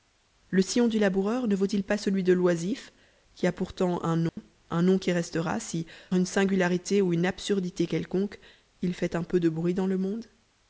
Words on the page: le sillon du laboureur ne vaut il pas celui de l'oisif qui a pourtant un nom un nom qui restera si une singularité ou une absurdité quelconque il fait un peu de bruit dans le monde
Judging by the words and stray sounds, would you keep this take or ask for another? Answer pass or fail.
fail